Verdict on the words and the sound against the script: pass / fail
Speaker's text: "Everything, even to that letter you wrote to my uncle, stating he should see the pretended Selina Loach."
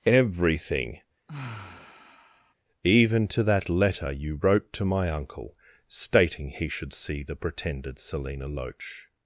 fail